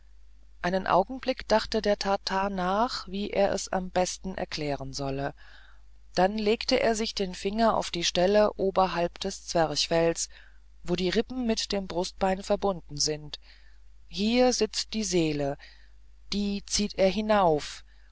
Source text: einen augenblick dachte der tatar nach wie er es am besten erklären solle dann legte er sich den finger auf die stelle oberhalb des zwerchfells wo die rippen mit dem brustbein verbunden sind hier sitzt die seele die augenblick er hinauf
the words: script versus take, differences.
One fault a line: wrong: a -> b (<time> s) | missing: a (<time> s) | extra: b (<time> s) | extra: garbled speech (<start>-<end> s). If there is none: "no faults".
wrong: augenblick -> zieht (16.6 s)